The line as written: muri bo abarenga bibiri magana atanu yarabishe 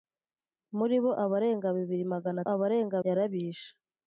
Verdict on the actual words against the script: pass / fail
fail